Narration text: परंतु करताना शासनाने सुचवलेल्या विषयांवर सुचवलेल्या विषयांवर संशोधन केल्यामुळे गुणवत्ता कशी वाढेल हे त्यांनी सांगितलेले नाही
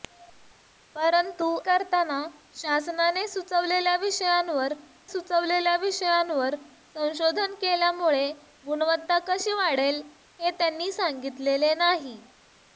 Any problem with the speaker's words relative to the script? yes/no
no